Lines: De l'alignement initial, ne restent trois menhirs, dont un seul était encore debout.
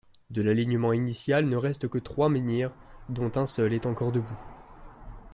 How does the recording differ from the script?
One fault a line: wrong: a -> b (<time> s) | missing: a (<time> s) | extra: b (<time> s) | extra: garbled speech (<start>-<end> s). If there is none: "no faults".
extra: que (1.9 s)
wrong: était -> est (3.7 s)